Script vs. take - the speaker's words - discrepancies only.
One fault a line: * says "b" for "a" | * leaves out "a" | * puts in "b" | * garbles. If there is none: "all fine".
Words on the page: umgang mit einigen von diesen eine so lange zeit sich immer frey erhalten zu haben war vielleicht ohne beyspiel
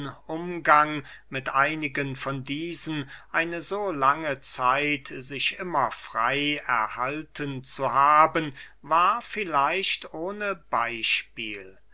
all fine